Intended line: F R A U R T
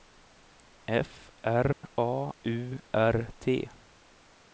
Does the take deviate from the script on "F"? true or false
false